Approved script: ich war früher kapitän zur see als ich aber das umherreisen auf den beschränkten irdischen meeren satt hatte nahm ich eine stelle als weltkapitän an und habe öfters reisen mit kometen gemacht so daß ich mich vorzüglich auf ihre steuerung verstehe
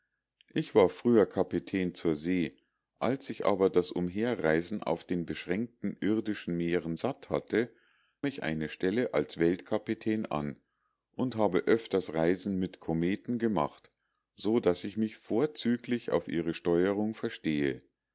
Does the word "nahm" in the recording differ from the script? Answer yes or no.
yes